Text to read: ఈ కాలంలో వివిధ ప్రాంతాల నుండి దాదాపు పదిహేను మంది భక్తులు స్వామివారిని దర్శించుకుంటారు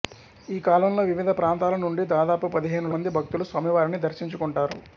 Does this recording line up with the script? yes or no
yes